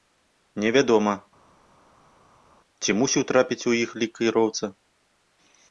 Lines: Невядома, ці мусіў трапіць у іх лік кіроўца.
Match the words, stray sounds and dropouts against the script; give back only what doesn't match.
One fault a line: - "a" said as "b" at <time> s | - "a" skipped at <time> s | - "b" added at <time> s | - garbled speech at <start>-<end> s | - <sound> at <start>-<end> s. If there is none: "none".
none